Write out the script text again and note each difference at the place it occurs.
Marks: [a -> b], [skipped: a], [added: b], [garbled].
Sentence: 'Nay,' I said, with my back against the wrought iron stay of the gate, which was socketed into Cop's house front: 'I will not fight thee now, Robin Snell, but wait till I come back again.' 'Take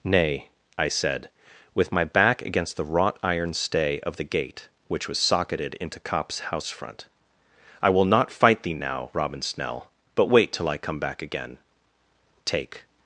'Nay,' I said, with my back against the wrought iron stay of the gate, which was socketed into Cop's house front: 'I will not fight thee now, Robin Snell, but wait till I come back again.' 'Take